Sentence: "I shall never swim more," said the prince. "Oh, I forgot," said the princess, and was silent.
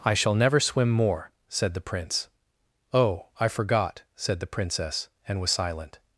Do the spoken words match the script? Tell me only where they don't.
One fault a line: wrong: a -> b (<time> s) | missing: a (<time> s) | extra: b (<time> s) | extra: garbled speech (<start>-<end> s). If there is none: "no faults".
no faults